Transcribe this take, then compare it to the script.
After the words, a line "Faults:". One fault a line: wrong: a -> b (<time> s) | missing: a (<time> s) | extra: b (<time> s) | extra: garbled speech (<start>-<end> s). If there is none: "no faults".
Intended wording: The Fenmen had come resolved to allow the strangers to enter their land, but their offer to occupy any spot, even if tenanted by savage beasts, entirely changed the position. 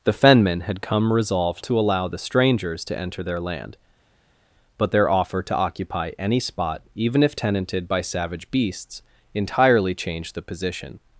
The Fenmen had come resolved to allow the strangers to enter their land, but their offer to occupy any spot, even if tenanted by savage beasts, entirely changed the position.
Faults:
no faults